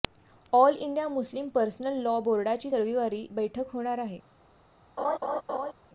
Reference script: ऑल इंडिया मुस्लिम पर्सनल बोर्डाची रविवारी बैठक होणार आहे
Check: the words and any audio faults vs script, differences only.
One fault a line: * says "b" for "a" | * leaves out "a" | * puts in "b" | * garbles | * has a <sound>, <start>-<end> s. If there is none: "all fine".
* puts in "लॉ"
* has a laugh, 5.0-5.7 s